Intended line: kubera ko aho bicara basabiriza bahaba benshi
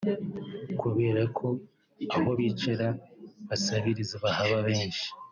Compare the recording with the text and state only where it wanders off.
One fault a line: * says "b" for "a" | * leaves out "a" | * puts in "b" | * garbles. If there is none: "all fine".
all fine